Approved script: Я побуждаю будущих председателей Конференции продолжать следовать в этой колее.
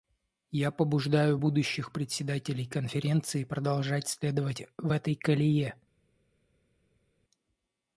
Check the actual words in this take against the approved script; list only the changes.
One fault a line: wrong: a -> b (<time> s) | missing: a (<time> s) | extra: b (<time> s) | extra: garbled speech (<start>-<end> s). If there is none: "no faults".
no faults